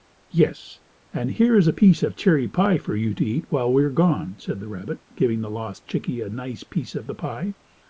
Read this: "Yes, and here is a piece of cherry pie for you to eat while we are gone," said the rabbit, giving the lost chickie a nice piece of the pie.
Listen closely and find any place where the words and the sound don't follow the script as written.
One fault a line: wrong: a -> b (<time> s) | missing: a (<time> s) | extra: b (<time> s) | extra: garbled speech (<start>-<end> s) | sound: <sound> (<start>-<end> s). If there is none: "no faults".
no faults